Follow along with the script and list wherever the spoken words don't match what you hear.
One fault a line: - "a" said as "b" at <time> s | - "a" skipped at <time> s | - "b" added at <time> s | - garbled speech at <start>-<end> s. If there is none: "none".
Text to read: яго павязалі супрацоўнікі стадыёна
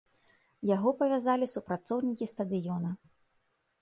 none